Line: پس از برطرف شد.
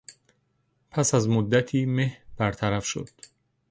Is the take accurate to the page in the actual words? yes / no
no